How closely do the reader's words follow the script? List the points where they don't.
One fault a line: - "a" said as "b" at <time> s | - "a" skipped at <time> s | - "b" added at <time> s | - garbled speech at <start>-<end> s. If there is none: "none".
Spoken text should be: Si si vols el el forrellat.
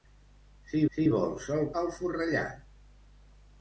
none